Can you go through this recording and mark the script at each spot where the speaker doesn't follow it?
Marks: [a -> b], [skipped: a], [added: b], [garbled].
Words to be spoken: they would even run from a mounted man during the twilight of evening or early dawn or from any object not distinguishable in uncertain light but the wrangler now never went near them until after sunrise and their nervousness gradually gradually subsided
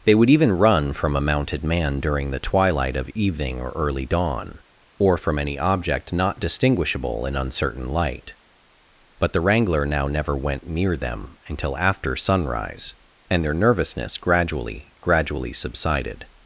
they would even run from a mounted man during the twilight of evening or early dawn or from any object not distinguishable in uncertain light but the wrangler now never went near them until after sunrise and their nervousness gradually gradually subsided